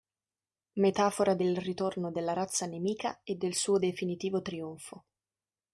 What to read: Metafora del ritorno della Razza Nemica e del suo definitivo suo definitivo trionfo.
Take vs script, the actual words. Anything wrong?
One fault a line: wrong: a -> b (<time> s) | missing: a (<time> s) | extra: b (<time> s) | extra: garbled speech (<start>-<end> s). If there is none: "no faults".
missing: suo definitivo (4.4 s)